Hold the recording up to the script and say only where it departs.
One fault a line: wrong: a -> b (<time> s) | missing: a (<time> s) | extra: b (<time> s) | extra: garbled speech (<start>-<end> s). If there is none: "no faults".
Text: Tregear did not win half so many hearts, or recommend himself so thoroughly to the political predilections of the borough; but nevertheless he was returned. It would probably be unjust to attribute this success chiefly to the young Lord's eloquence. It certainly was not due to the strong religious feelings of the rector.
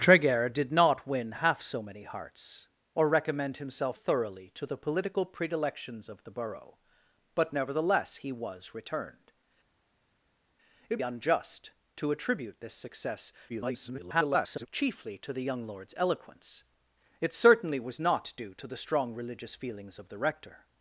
missing: so (4.0 s)
missing: would probably be (11.0 s)
extra: garbled speech (13.5-14.7 s)